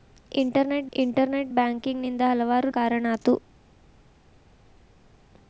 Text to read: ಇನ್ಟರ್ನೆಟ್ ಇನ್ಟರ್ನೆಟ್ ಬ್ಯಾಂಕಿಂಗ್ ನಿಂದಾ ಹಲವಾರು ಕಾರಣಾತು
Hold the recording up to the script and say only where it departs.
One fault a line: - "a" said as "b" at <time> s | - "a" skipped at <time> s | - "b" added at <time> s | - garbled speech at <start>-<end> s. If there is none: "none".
none